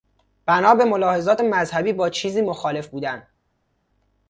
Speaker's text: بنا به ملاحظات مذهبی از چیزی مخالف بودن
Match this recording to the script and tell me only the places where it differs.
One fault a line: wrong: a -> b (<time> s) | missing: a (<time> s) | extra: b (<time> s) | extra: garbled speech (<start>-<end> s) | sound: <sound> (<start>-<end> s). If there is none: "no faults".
wrong: از -> با (1.9 s)